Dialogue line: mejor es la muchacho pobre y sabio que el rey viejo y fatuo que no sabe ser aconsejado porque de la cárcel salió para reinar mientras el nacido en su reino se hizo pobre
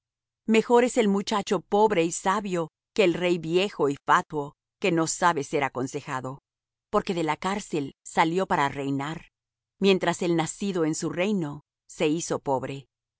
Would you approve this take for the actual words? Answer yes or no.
no